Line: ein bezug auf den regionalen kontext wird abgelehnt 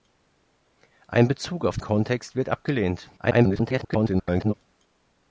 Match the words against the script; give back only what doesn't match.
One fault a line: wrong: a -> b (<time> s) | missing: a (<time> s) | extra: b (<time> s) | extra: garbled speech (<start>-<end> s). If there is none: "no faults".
missing: den regionalen (1.8 s)
extra: garbled speech (3.2-4.5 s)